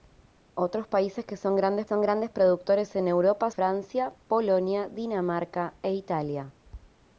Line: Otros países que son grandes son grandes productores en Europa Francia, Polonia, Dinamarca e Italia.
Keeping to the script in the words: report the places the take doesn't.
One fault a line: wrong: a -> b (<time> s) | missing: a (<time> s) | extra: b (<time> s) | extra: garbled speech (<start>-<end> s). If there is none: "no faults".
no faults